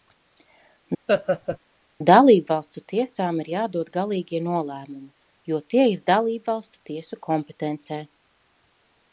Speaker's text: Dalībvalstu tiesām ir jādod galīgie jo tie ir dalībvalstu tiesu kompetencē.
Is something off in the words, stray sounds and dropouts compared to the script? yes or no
yes